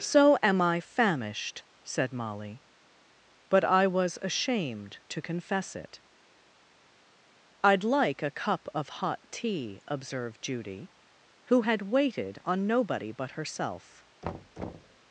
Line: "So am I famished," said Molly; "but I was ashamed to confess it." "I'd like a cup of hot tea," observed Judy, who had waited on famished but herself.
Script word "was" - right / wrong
right